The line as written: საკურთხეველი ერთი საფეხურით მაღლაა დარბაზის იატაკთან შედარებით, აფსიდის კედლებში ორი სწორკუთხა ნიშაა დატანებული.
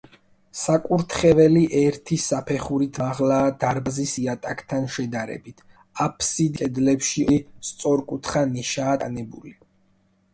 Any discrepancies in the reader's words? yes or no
no